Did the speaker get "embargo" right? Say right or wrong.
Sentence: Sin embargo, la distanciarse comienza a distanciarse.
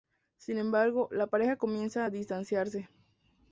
right